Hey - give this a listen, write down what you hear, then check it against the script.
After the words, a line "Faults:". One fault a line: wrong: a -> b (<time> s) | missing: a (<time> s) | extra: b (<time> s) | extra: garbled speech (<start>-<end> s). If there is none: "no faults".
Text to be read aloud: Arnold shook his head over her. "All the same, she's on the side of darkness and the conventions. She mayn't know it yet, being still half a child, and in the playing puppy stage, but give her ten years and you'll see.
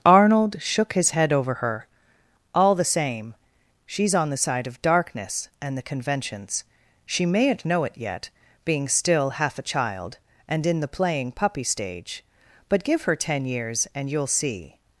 Arnold shook his head over her. "All the same, she's on the side of darkness and the conventions. She mayn't know it yet, being still half a child, and in the playing puppy stage, but give her ten years and you'll see.
Faults:
no faults